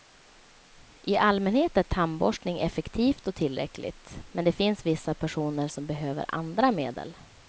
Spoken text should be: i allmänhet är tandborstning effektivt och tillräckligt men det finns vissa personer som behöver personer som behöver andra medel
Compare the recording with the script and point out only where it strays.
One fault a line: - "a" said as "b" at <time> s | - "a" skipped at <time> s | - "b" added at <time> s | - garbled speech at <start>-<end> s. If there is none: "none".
- "personer som behöver" skipped at 6.2 s